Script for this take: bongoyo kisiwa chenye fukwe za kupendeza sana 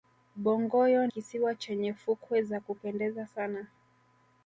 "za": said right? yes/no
yes